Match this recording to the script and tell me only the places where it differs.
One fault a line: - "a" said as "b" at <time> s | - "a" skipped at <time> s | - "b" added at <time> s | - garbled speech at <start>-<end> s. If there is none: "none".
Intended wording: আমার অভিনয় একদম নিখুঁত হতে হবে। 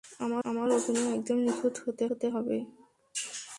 - "আমার" added at 0.4 s
- "হতে" added at 2.1 s